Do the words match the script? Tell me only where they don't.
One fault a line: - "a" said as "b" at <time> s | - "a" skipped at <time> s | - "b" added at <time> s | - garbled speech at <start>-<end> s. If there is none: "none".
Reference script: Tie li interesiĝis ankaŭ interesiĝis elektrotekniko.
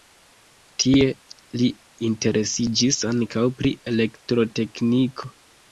- "interesiĝis" said as "pri" at 3.6 s